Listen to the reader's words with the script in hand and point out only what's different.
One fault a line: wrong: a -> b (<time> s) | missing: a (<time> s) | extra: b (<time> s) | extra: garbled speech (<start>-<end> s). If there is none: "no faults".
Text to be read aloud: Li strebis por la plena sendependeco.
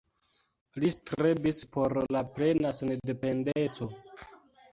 no faults